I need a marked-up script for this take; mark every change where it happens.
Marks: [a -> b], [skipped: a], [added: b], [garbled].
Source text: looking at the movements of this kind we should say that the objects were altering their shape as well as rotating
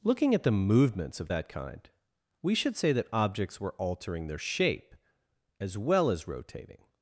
looking at the movements of [this -> that] kind we should say that [skipped: the] objects were altering their shape as well as rotating